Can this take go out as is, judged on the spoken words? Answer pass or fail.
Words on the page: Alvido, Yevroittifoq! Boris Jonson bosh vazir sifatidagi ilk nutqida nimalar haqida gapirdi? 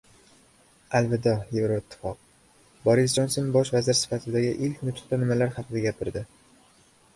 pass